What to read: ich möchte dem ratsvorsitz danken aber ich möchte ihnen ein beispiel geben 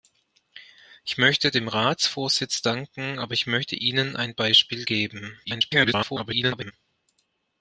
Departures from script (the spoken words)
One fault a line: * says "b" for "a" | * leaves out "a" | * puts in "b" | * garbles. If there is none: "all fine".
* garbles